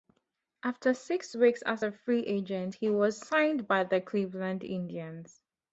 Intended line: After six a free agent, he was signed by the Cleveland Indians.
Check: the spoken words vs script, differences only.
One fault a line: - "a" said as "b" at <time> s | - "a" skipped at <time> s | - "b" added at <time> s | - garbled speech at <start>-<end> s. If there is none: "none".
- "weeks as" added at 1.3 s